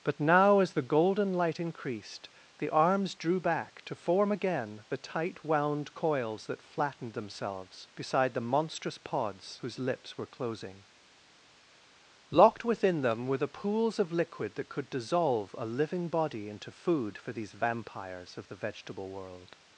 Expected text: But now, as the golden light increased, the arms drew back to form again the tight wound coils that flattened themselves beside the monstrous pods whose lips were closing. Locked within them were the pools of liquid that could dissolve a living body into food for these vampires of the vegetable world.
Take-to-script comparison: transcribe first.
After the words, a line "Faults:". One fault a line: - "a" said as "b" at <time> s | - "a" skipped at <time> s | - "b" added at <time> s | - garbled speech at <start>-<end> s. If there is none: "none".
But now, as the golden light increased, the arms drew back to form again the tight wound coils that flattened themselves beside the monstrous pods whose lips were closing. Locked within them were the pools of liquid that could dissolve a living body into food for these vampires of the vegetable world.
Faults:
none